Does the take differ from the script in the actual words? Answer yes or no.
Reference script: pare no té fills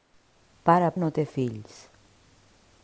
no